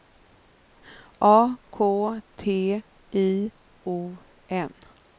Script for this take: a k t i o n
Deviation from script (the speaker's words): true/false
false